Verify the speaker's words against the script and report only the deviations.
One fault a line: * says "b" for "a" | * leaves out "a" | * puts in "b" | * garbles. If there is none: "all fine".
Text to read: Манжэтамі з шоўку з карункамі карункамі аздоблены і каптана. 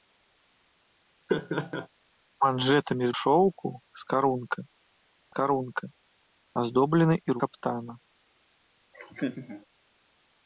all fine